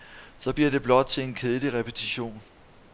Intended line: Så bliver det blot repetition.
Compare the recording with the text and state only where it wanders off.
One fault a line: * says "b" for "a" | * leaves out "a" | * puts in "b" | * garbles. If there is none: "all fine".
* puts in "til en kedelig"